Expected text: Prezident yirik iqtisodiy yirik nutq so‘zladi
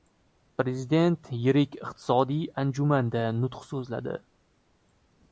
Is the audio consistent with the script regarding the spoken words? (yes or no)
no